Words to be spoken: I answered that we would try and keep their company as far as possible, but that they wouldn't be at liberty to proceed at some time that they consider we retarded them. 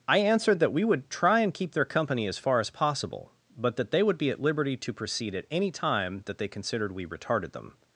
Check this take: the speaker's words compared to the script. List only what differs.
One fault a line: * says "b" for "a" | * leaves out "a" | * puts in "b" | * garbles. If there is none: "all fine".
* says "would" for "wouldn't"
* says "any" for "some"
* says "considered" for "consider"